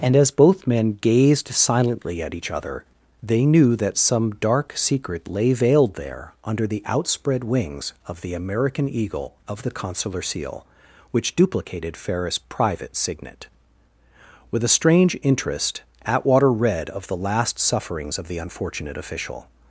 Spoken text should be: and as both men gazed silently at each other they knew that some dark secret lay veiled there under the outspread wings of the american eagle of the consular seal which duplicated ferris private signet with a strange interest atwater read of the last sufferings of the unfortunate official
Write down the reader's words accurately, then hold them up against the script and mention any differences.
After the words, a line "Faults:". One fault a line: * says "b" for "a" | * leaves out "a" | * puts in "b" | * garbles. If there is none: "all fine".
and as both men gazed silently at each other they knew that some dark secret lay veiled there under the outspread wings of the american eagle of the consular seal which duplicated ferris private signet with a strange interest atwater read of the last sufferings of the unfortunate official
Faults:
all fine